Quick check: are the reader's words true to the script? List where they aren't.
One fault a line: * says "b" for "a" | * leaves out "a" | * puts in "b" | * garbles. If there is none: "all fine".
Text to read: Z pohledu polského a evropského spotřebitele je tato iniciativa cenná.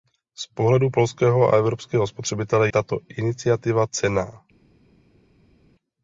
* leaves out "je"